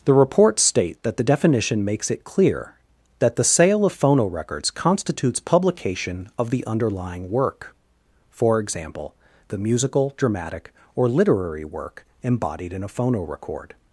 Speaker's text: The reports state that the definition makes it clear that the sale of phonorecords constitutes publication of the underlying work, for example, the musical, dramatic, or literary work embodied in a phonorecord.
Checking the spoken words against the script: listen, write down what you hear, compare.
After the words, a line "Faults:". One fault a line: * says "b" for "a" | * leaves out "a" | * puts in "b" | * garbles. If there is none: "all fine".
The reports state that the definition makes it clear that the sale of phonorecords constitutes publication of the underlying work, for example, the musical, dramatic, or literary work embodied in a phonorecord.
Faults:
all fine